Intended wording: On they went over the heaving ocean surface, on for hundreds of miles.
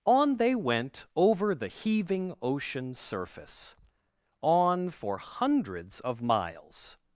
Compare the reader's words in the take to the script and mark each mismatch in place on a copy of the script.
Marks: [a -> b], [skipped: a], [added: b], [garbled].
On they went over the heaving ocean surface, on for hundreds of miles.